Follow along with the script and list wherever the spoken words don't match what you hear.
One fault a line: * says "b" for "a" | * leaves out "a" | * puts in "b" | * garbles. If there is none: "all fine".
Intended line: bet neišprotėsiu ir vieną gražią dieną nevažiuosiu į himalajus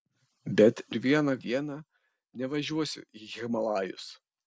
* leaves out "neišprotėsiu"
* leaves out "gražią"